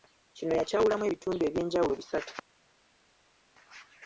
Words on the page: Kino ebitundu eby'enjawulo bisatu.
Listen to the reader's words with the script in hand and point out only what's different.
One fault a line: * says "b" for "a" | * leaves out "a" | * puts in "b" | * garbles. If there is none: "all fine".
* puts in "yakyawulamu"